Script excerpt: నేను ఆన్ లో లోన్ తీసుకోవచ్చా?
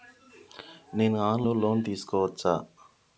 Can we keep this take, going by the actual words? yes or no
yes